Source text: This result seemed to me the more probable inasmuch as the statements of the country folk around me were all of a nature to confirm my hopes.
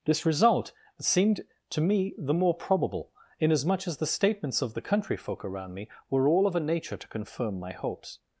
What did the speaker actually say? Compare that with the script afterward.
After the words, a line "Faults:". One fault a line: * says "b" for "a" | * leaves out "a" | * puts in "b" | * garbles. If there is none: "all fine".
This result seemed to me the more probable inasmuch as the statements of the country folk around me were all of a nature to confirm my hopes.
Faults:
all fine